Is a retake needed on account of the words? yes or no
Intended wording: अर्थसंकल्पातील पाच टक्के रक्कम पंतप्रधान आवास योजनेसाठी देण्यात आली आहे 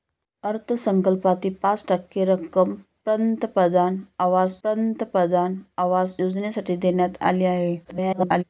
yes